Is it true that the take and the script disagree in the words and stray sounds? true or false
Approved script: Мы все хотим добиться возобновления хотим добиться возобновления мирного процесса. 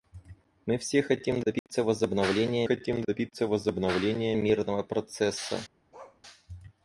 true